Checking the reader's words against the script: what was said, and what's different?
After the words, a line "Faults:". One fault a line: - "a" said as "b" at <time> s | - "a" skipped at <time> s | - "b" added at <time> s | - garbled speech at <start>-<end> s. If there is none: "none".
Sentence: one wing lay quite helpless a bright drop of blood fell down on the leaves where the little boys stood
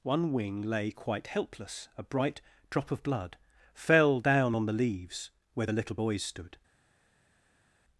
one wing lay quite helpless a bright drop of blood fell down on the leaves where the little boys stood
Faults:
none